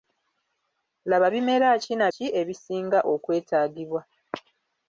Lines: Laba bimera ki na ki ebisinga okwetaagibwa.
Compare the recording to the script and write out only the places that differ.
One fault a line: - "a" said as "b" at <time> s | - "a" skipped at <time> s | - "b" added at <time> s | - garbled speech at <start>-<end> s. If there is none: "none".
none